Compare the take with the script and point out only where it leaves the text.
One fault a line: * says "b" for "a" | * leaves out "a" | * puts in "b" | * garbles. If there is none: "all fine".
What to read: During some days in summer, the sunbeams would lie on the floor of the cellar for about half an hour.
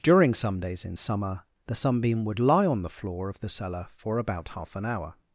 * says "sunbeam" for "sunbeams"